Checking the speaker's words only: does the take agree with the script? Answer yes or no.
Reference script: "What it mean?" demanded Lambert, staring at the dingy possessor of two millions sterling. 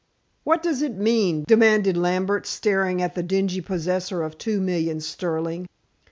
no